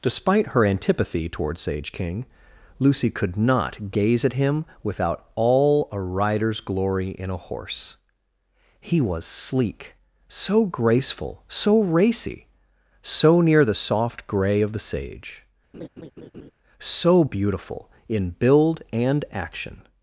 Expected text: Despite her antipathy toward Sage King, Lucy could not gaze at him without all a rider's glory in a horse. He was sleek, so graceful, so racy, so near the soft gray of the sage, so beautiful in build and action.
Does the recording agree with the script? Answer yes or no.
yes